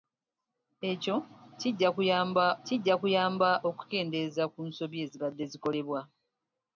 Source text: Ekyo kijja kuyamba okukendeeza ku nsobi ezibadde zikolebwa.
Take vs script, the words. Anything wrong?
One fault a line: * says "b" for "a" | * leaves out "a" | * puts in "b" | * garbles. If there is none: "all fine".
* puts in "kijja kuyamba"